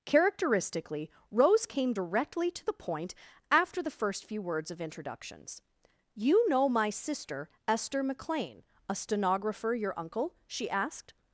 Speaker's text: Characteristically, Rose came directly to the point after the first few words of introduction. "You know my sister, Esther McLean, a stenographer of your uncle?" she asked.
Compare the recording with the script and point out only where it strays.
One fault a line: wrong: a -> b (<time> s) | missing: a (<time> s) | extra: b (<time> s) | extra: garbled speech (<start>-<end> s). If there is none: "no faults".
wrong: introduction -> introductions (4.8 s)
missing: of (9.7 s)